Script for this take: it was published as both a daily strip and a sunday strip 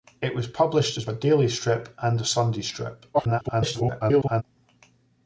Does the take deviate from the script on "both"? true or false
true